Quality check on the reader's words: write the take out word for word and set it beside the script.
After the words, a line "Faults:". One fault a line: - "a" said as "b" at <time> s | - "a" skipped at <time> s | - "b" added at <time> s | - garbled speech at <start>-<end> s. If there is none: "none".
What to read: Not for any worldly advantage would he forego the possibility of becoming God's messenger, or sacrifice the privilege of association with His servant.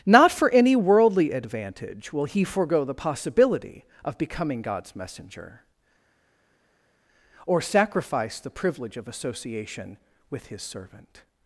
Not for any worldly advantage will he forego the possibility of becoming God's messenger, or sacrifice the privilege of association with His servant.
Faults:
- "would" said as "will" at 2.1 s